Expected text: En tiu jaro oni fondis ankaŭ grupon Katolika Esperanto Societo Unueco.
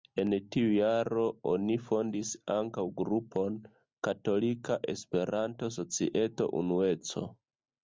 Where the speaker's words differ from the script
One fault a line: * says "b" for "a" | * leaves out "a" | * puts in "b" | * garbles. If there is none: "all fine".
all fine